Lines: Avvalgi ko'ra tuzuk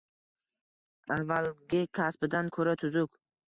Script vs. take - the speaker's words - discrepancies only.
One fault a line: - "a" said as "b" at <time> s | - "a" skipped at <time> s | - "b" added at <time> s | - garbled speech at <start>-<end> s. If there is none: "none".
- "kasbidan" added at 2.0 s